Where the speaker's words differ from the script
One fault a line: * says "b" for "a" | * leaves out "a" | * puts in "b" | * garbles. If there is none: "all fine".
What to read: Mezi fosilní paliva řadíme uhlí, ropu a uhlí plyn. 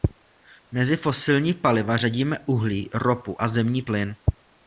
* says "zemní" for "uhlí"